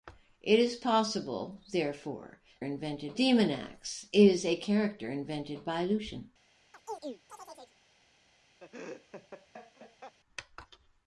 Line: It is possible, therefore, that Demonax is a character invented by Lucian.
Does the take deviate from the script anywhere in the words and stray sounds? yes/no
yes